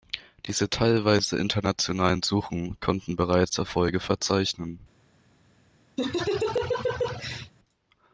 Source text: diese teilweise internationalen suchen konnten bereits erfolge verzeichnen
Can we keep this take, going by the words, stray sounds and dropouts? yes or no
no